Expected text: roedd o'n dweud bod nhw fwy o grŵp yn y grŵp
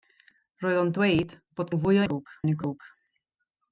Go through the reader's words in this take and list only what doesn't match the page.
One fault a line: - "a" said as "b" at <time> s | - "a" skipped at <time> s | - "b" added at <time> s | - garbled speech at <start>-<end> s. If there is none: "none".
none